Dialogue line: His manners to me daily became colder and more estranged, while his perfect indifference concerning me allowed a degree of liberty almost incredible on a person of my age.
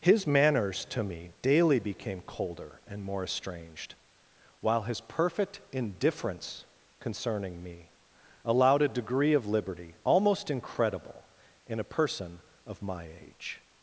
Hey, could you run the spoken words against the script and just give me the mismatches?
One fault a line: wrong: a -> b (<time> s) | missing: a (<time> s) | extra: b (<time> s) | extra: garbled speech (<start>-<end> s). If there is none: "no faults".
wrong: on -> in (11.7 s)